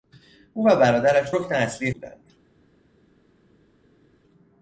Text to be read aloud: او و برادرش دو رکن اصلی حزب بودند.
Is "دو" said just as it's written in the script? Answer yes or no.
no